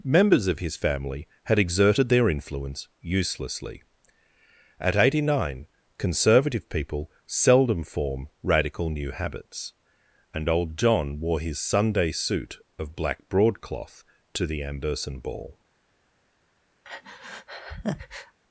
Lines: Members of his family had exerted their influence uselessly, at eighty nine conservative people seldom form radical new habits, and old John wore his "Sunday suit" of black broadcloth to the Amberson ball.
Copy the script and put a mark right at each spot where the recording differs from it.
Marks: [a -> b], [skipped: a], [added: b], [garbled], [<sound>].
Members of his family had exerted their influence uselessly, at eighty nine conservative people seldom form radical new habits, and old John wore his "Sunday suit" of black broadcloth to the Amberson ball. [breath]